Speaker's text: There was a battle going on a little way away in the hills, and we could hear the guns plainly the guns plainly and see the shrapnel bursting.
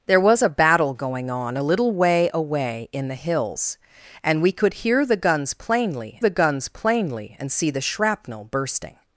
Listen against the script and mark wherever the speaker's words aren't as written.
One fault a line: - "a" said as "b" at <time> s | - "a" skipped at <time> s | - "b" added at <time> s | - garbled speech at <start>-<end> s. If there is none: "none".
none